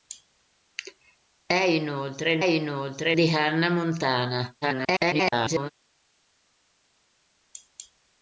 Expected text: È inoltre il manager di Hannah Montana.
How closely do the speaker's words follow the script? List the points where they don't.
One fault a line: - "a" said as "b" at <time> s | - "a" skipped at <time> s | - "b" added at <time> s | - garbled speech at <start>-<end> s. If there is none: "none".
- "manager" said as "inoltre" at 2.4 s
- garbled speech at 4.6-5.7 s